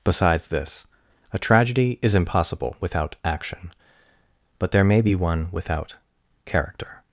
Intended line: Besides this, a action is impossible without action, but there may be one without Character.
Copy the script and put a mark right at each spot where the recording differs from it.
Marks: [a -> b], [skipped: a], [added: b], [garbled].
Besides this, a [action -> tragedy] is impossible without action, but there may be one without Character.